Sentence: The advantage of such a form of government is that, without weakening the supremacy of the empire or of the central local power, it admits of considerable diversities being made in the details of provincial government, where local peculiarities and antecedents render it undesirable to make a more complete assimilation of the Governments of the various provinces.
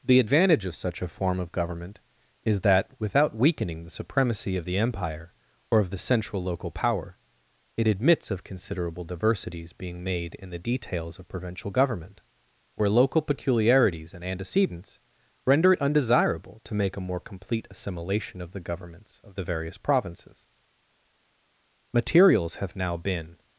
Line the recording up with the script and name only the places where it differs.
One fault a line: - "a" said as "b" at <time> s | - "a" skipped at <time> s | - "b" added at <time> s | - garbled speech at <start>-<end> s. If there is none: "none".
- "Materials have now been" added at 20.6 s